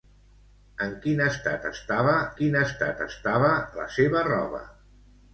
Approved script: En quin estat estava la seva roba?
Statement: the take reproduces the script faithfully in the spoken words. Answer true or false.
false